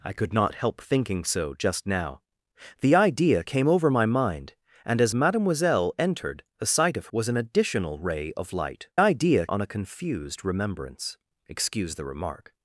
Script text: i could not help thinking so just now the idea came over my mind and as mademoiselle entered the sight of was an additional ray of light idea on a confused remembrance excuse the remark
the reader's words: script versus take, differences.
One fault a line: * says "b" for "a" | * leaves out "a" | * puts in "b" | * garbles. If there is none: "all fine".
all fine